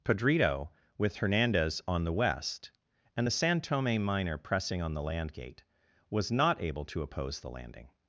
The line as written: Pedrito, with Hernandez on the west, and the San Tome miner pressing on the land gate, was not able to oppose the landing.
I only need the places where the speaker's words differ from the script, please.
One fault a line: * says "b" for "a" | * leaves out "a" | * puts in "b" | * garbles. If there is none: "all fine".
all fine